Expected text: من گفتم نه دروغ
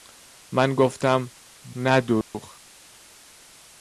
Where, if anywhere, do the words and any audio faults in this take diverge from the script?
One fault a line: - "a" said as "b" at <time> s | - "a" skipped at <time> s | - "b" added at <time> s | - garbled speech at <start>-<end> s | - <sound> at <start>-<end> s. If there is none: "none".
- dropout at 2.2-2.3 s